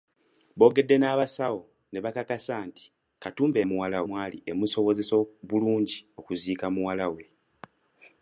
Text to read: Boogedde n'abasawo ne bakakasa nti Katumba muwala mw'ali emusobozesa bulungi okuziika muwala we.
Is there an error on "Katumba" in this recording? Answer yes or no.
no